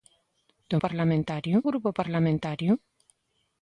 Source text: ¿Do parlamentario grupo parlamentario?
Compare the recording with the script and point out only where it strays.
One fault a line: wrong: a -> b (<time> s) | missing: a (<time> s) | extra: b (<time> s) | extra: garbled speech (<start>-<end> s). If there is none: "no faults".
no faults